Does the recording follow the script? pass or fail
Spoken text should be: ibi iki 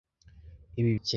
pass